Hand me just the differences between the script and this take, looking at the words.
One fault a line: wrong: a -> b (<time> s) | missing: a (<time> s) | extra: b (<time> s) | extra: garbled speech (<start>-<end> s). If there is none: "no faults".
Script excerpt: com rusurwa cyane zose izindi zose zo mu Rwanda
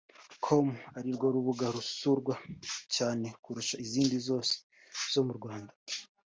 extra: arirwo rubuga (1.0 s)
wrong: zose -> kurusha (3.4 s)